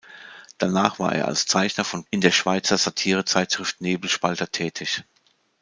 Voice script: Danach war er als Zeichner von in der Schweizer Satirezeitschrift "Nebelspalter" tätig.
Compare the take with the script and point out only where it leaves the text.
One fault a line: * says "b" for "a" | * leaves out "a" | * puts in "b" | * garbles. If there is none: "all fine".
all fine